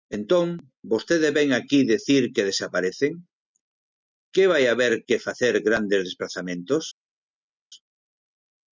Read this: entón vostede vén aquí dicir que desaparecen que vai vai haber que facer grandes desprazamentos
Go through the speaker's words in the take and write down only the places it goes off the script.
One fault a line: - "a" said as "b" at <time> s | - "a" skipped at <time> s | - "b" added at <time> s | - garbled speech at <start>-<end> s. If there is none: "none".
- "vai" skipped at 4.6 s